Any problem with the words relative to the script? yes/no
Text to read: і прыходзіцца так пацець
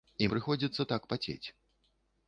no